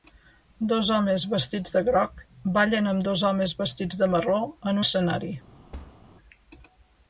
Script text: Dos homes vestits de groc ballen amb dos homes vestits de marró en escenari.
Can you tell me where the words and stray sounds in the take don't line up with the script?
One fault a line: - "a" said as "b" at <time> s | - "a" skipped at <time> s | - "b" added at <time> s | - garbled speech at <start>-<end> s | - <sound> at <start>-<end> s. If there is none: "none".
- thud at 5.7-6.0 s